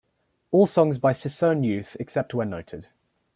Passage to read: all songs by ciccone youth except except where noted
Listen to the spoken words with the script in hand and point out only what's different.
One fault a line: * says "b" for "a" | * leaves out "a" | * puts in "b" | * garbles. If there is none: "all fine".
* leaves out "except"